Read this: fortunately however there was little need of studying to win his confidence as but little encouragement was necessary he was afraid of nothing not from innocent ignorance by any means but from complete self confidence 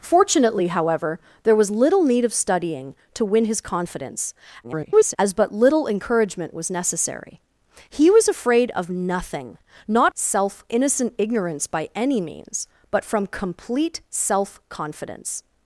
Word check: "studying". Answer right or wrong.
right